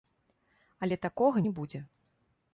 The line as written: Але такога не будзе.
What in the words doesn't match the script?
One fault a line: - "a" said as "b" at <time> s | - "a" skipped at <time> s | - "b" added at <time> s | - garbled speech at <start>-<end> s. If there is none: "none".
none